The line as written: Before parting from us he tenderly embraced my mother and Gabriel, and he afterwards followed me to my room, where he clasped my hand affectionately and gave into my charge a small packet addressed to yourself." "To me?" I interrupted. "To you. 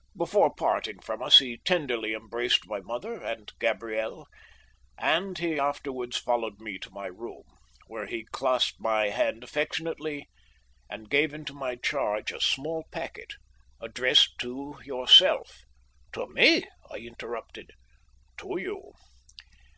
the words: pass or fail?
pass